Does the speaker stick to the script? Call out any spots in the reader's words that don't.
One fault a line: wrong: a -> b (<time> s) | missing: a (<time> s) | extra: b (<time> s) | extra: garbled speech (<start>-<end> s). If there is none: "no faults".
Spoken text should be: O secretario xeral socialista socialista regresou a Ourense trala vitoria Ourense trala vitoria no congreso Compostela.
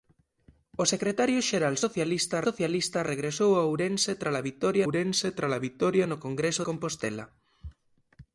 no faults